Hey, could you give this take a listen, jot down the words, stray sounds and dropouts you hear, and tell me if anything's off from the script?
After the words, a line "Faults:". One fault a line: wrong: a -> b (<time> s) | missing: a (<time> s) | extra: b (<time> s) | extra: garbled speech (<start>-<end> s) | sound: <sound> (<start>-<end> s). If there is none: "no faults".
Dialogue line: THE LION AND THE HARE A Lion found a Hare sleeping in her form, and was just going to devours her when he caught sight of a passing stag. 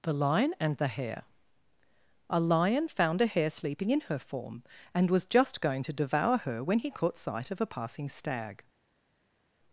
THE LION AND THE HARE A Lion found a Hare sleeping in her form, and was just going to devour her when he caught sight of a passing stag.
Faults:
wrong: devours -> devour (5.9 s)